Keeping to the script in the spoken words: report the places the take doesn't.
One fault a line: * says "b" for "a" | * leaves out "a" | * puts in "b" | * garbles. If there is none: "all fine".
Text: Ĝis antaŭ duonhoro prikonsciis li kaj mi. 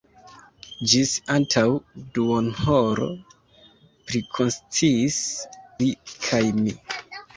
all fine